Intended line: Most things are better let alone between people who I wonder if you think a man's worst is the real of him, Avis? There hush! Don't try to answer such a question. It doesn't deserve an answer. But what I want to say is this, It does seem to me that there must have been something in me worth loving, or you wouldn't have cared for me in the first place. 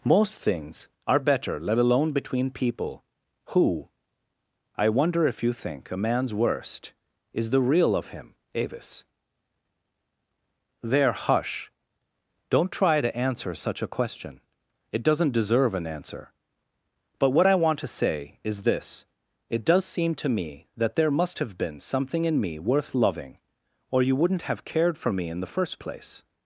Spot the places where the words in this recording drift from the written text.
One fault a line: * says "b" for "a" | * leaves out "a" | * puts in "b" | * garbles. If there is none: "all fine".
all fine